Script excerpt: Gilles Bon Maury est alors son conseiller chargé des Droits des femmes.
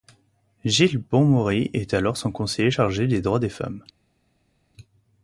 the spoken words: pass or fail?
pass